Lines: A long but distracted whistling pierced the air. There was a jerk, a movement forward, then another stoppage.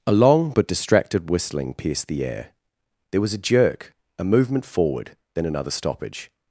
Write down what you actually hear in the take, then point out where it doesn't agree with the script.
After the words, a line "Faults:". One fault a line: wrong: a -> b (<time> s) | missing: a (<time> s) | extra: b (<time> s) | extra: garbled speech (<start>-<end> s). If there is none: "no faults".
A long but distracted whistling pierced the air. There was a jerk, a movement forward, then another stoppage.
Faults:
no faults